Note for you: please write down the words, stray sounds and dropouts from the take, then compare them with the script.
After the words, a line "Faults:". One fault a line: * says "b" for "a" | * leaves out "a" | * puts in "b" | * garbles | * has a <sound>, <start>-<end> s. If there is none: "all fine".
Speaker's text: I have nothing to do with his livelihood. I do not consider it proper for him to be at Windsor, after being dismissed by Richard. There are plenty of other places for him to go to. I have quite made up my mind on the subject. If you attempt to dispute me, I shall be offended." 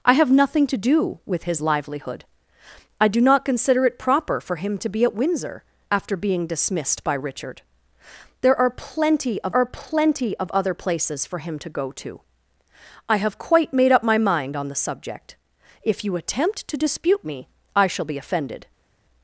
I have nothing to do with his livelihood. I do not consider it proper for him to be at Windsor, after being dismissed by Richard. There are plenty of are plenty of other places for him to go to. I have quite made up my mind on the subject. If you attempt to dispute me, I shall be offended."
Faults:
* puts in "are plenty of"